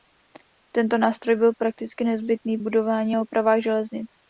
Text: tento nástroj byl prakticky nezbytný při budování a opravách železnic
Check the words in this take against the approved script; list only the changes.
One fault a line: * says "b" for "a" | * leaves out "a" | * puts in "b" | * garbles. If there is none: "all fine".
* leaves out "při"